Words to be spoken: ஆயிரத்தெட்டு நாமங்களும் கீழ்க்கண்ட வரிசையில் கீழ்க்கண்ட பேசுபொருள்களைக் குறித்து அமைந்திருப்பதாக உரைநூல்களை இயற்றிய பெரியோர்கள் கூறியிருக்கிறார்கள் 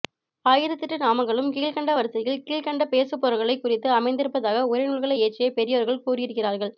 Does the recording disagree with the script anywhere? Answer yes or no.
no